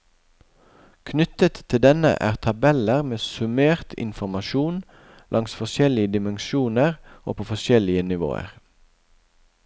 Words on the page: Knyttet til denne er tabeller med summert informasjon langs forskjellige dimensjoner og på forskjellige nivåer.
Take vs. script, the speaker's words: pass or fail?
pass